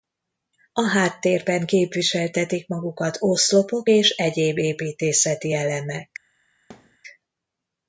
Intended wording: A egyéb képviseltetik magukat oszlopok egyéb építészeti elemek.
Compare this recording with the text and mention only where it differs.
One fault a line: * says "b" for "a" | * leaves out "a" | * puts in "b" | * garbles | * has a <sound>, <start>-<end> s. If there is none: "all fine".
* says "háttérben" for "egyéb"
* puts in "és"
* has a thud, 6.7-7.0 s